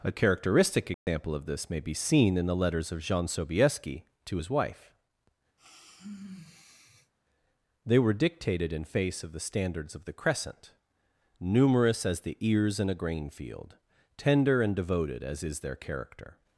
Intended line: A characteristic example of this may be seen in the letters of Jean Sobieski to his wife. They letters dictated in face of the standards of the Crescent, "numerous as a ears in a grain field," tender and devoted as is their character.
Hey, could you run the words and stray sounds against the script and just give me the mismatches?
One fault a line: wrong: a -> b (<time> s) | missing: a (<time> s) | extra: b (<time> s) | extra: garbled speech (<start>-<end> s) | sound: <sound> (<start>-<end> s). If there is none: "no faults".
sound: dropout (0.9-1.1 s)
sound: sigh (5.6-7.1 s)
wrong: letters -> were (8.0 s)
wrong: a -> the (12.2 s)